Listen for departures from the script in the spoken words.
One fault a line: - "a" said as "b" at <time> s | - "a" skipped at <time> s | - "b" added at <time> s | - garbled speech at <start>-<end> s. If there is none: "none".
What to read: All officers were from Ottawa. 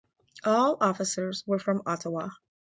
none